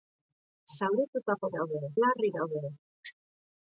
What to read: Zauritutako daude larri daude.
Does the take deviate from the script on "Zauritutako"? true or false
false